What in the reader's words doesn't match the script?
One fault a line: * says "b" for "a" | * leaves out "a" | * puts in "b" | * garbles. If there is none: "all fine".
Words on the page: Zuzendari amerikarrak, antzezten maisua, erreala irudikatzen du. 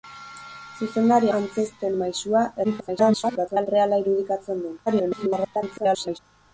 * leaves out "amerikarrak"
* garbles
* garbles